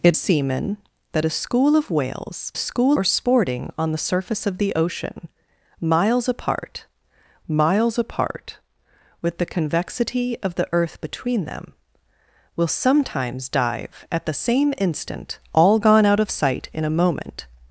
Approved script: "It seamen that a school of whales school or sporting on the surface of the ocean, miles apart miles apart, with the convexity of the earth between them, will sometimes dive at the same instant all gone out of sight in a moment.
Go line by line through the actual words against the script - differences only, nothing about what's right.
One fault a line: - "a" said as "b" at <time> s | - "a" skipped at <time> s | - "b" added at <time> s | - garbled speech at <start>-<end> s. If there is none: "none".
none